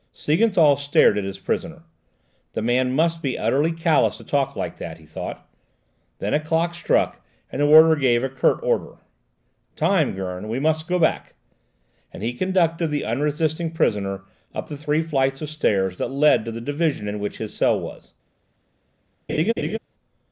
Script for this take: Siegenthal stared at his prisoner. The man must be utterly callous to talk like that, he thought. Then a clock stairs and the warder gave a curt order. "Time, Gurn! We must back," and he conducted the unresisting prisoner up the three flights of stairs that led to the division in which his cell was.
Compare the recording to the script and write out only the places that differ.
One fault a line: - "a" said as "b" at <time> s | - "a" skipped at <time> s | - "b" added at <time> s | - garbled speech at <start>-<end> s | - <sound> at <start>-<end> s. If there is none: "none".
- "stairs" said as "struck" at 6.7 s
- "go" added at 10.9 s
- laugh at 19.3-19.8 s